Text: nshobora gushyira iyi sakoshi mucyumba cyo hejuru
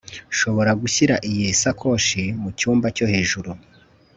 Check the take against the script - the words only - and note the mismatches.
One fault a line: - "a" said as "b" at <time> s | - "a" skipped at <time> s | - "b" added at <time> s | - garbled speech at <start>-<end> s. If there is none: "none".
none